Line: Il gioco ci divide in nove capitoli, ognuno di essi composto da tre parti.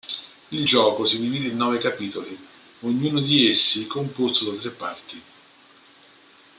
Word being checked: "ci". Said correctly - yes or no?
no